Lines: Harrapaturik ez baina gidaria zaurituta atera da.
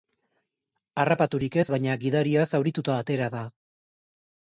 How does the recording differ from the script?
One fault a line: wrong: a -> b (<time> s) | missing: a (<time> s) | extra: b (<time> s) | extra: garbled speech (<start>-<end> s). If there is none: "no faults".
no faults